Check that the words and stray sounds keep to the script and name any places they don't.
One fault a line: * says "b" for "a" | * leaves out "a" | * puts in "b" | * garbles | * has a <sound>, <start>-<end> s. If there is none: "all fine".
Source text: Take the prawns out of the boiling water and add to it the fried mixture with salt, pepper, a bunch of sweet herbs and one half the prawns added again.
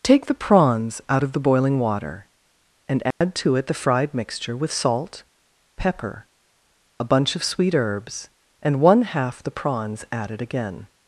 * has a dropout, 3.1-3.2 s